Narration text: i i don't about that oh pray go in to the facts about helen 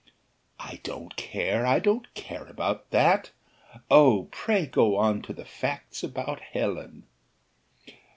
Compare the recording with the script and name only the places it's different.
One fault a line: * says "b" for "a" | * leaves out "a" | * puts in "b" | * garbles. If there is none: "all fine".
* puts in "don't care"
* puts in "care"
* says "on" for "in"